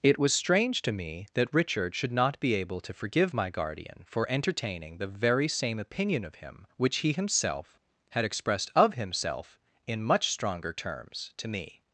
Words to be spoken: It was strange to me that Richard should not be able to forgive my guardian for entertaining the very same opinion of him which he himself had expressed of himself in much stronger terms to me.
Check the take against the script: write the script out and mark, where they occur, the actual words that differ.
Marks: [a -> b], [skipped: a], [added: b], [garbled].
It was strange to me that Richard should not be able to forgive my guardian for entertaining the very same opinion of him which he himself had expressed of himself in much stronger terms to me.